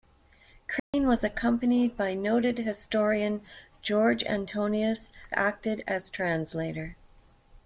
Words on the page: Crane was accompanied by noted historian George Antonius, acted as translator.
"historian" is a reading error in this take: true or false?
false